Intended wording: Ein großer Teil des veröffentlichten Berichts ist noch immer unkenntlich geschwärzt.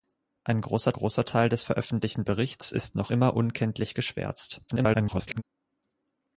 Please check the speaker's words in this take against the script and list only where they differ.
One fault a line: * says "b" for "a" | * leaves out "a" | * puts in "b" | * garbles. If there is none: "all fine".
* puts in "großer"
* garbles